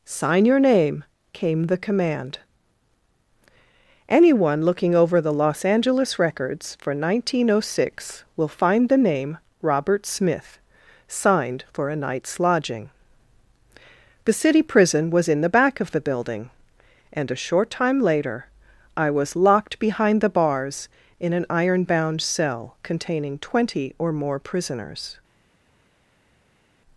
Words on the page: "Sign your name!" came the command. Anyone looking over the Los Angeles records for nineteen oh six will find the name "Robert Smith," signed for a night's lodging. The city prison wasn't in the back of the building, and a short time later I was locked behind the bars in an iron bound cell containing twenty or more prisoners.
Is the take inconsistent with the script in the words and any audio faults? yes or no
yes